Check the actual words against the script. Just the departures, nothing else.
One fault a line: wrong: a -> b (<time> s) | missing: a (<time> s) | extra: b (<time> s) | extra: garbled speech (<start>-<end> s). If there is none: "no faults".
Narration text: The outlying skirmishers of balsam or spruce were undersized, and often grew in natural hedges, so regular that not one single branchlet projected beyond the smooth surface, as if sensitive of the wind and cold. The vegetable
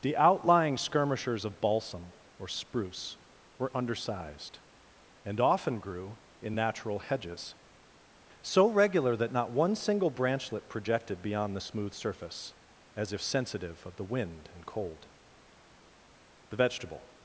no faults